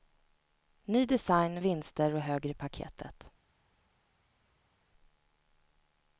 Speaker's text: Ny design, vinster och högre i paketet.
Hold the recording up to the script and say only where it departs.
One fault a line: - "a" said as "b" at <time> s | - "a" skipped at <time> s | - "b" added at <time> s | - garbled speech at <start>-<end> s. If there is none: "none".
none